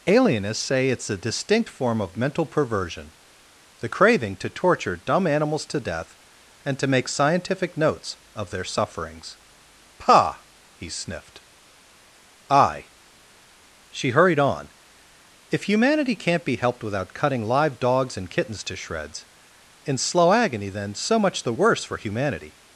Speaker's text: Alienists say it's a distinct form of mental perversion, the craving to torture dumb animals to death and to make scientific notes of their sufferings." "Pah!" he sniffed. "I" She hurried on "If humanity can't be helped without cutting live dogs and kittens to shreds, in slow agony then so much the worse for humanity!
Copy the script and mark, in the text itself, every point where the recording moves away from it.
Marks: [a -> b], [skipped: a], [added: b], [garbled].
Alienists say it's a distinct form of mental perversion, the craving to torture dumb animals to death and to make scientific notes of their sufferings." "Pah!" he sniffed. "I" She hurried on "If humanity can't be helped without cutting live dogs and kittens to shreds, in slow agony then so much the worse for humanity!